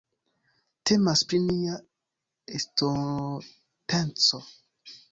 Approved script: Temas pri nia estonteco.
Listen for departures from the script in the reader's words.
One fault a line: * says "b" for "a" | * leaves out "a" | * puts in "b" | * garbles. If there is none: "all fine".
all fine